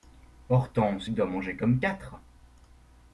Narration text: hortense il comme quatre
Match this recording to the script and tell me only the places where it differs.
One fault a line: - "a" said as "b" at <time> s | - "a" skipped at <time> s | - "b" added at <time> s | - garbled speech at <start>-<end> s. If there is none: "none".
- "doit manger" added at 1.1 s